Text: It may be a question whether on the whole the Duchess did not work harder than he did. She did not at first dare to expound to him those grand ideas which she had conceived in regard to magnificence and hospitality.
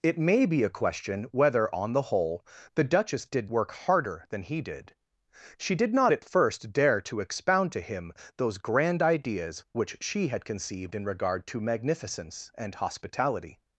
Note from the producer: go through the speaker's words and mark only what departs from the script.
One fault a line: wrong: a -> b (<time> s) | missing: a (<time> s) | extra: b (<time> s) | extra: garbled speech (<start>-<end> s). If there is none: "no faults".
missing: not (3.5 s)